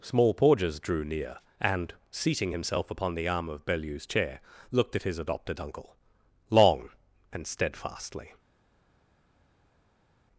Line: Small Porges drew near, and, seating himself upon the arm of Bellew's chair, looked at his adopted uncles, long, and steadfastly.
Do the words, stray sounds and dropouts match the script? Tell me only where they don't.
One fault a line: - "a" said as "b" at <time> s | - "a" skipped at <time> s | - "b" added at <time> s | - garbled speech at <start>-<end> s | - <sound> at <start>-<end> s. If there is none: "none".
- "uncles" said as "uncle" at 5.6 s